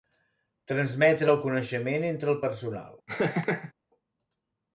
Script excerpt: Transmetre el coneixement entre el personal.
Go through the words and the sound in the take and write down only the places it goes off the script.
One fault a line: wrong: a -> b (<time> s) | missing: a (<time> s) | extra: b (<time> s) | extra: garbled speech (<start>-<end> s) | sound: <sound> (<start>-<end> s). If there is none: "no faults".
sound: laugh (3.1-3.7 s)